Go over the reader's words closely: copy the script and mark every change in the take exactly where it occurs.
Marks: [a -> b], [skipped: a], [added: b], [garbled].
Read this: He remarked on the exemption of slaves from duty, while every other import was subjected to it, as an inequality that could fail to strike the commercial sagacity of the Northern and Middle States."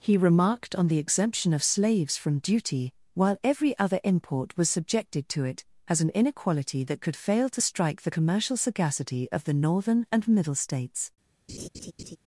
He remarked on the exemption of slaves from duty, while every other import was subjected to it, as an inequality that could fail to strike the commercial sagacity of the Northern and Middle States."